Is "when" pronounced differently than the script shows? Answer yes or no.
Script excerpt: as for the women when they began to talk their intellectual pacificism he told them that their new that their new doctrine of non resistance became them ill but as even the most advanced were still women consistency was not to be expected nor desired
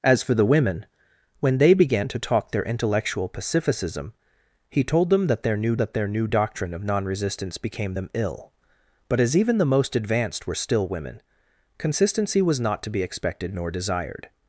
no